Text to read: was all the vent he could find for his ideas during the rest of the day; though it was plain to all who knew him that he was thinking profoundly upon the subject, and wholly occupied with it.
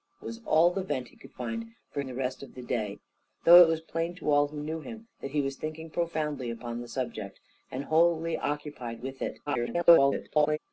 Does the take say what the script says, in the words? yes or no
no